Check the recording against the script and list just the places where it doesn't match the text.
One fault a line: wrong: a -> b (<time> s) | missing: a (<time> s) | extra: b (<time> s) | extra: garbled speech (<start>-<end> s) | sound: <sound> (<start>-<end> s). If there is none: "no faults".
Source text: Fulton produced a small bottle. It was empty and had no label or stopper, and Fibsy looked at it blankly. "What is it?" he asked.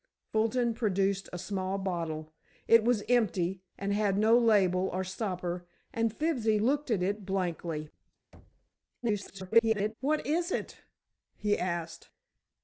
sound: thud (8.3-8.7 s)
extra: garbled speech (9.0-9.9 s)